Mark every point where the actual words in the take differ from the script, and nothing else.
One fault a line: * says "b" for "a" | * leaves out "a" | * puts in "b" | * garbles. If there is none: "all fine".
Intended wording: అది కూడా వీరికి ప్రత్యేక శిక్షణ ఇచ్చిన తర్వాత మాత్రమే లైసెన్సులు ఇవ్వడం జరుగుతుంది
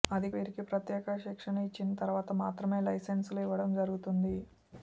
* leaves out "కూడా"